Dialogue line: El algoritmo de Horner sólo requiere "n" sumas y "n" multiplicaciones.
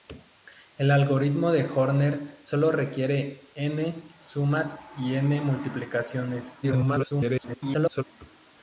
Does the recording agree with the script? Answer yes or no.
no